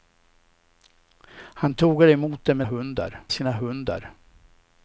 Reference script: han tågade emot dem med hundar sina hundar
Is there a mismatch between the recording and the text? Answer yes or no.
no